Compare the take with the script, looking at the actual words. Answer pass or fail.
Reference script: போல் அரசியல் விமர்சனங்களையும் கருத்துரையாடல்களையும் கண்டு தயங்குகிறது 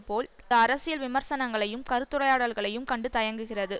pass